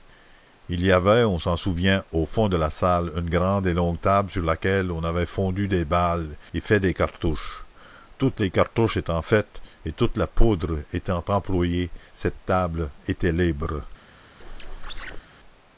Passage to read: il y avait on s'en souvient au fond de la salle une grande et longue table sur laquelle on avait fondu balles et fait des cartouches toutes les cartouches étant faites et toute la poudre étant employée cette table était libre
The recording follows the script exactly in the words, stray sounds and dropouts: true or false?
false